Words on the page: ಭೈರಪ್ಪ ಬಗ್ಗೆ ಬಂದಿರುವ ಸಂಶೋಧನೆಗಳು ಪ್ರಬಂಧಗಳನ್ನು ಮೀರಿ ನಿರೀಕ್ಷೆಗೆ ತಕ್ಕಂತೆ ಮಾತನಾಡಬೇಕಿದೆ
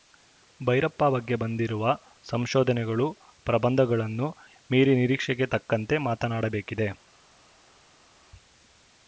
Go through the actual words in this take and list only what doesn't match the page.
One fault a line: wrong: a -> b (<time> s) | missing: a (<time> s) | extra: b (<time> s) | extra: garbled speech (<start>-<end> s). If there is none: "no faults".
no faults